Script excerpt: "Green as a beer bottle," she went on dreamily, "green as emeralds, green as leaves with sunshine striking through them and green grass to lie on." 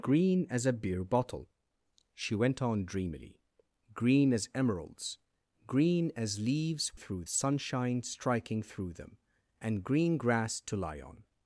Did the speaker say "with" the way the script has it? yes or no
no